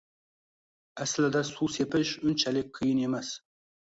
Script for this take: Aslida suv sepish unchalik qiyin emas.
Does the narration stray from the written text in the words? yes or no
no